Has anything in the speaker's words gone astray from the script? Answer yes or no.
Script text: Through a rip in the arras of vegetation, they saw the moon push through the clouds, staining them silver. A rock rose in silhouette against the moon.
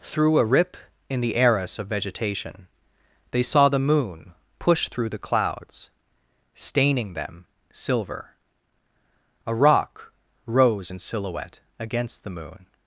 no